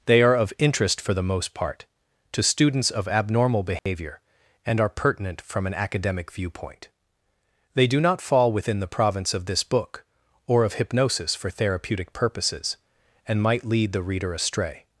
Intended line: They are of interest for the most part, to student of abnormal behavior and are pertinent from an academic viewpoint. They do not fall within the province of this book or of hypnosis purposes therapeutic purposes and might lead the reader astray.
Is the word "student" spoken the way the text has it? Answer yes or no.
no